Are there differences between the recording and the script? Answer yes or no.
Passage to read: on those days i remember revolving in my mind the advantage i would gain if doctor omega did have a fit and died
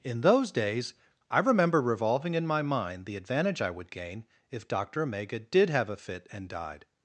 yes